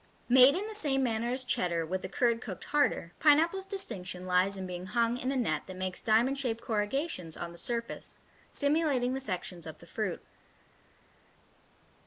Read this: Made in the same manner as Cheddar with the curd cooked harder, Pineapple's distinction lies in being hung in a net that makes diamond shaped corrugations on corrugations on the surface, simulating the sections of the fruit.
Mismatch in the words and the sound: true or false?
true